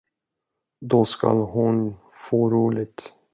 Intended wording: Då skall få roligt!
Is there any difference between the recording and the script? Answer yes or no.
yes